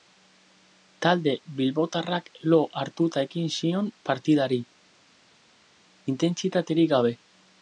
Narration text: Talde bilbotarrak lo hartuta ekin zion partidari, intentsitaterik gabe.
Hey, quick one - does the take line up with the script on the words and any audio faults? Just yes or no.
yes